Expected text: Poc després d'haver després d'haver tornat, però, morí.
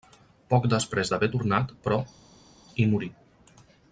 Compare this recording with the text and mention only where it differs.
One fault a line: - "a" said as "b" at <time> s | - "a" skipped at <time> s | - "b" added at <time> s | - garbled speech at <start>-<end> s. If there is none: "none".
- "després d'haver" skipped at 1.3 s
- "hi" added at 2.8 s